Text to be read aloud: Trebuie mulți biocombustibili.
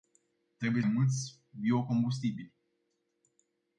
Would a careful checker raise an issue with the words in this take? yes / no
no